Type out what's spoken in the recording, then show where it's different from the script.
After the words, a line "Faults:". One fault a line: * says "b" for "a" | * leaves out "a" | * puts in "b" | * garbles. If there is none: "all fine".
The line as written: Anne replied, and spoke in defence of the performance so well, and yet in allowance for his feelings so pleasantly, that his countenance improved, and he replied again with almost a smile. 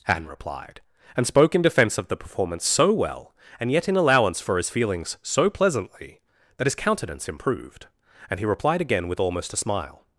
Anne replied, and spoke in defence of the performance so well, and yet in allowance for his feelings so pleasantly, that his countenance improved, and he replied again with almost a smile.
Faults:
all fine